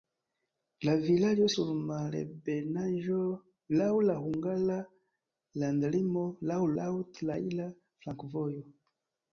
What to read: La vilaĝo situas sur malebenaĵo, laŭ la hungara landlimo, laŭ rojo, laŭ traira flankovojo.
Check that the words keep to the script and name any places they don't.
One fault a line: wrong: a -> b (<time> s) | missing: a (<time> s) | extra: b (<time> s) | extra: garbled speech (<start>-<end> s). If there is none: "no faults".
missing: situas (1.5 s)
missing: rojo (6.6 s)